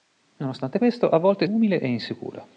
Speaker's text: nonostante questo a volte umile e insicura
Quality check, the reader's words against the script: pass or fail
pass